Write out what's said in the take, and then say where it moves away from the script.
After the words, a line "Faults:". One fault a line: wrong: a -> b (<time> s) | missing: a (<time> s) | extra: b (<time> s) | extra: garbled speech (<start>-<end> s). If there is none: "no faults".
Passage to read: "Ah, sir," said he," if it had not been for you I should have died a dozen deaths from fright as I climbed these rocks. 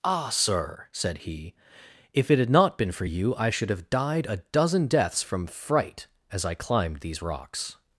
"Ah, sir," said he," if it had not been for you I should have died a dozen deaths from fright as I climbed these rocks.
Faults:
no faults